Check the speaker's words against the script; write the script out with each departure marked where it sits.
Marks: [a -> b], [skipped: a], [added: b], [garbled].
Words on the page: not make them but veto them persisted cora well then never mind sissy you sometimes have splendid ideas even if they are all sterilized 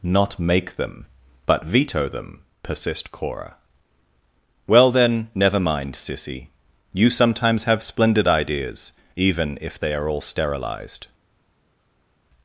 not make them but veto them [persisted -> persist] cora well then never mind sissy you sometimes have splendid ideas even if they are all sterilized